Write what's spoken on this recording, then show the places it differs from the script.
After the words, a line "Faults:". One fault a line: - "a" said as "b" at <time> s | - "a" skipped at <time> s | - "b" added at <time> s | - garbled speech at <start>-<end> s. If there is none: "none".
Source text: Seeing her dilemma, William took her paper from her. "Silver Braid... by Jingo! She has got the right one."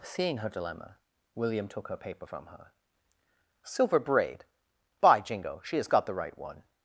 Seeing her dilemma, William took her paper from her. "Silver Braid... by Jingo! She has got the right one."
Faults:
none